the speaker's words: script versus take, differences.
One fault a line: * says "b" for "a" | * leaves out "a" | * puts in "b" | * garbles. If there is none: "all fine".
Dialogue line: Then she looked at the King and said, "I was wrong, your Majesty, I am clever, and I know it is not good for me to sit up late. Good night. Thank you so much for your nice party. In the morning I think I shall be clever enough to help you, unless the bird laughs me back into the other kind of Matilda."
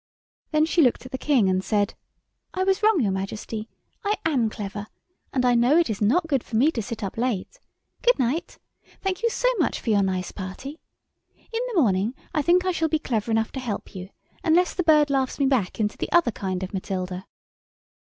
all fine